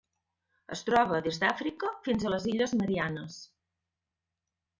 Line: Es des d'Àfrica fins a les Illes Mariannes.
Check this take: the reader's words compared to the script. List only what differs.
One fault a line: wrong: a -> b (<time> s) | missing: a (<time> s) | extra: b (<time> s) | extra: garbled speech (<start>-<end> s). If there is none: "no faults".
extra: troba (0.9 s)